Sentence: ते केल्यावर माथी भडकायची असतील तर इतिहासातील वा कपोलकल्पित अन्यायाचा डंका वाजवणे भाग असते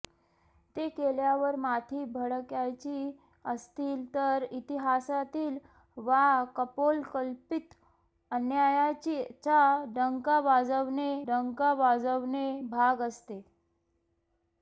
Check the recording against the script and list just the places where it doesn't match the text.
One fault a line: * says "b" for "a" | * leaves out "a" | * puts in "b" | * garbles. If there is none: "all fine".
* puts in "डंका वाजवणे"